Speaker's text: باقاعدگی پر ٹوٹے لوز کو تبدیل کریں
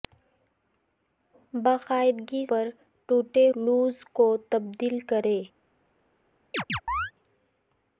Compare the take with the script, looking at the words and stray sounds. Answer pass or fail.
fail